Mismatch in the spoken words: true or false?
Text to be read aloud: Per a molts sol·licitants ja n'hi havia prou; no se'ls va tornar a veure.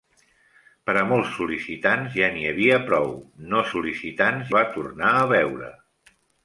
true